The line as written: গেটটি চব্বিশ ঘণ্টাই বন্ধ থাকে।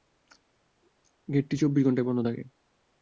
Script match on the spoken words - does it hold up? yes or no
yes